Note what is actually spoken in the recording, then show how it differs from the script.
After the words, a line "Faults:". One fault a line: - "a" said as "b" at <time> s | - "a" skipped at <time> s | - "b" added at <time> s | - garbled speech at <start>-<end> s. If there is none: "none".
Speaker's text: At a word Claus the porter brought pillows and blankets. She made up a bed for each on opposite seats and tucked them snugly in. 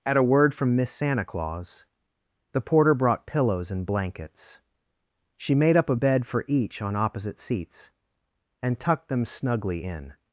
At a word from Miss Santa Claus the porter brought pillows and blankets. She made up a bed for each on opposite seats and tucked them snugly in.
Faults:
- "from Miss Santa" added at 0.5 s